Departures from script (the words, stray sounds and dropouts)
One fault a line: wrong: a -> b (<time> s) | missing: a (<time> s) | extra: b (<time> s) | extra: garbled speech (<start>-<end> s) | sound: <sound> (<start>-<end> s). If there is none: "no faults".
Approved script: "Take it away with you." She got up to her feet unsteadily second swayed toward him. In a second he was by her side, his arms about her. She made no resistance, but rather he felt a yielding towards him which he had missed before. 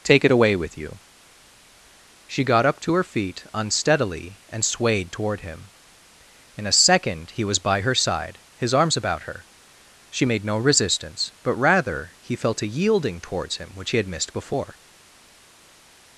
wrong: second -> and (4.5 s)